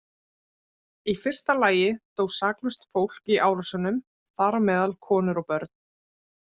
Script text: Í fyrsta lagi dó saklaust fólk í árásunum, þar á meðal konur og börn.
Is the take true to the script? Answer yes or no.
yes